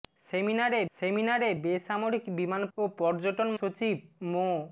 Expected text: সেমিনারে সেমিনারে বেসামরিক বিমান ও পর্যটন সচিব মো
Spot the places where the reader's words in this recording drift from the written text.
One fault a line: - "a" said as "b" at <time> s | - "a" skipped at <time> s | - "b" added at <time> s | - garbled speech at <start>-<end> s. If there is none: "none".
none